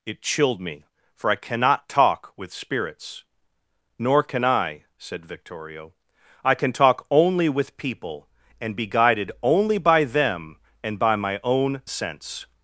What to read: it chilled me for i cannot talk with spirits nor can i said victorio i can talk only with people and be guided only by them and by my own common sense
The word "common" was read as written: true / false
false